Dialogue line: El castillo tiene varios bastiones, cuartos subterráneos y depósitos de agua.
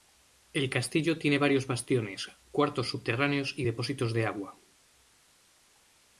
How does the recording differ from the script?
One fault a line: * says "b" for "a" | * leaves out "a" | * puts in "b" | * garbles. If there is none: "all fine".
all fine